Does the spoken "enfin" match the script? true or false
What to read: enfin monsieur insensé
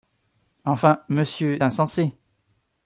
true